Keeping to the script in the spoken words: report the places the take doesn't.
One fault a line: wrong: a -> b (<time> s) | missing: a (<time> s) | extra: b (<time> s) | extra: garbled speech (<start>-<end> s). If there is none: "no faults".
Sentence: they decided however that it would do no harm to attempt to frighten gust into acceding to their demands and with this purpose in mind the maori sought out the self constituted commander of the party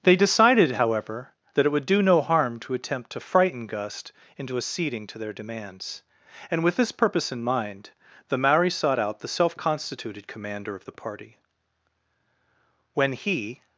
extra: when he (12.9 s)